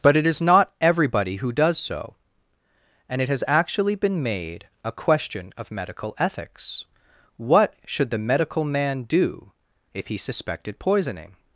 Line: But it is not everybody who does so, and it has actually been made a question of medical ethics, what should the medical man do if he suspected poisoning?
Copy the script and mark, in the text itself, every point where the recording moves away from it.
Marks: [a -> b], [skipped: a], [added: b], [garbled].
But it is not everybody who does so, and it has actually been made a question of medical ethics, what should the medical man do if he suspected poisoning?